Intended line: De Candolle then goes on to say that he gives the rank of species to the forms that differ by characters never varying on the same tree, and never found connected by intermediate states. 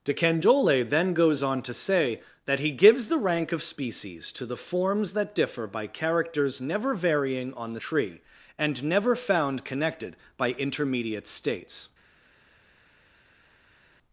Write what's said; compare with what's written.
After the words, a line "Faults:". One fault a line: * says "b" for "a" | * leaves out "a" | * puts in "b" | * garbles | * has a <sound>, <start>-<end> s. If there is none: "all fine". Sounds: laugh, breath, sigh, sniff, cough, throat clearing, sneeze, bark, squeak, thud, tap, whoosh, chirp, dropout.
De Candolle then goes on to say that he gives the rank of species to the forms that differ by characters never varying on the tree, and never found connected by intermediate states.
Faults:
* leaves out "same"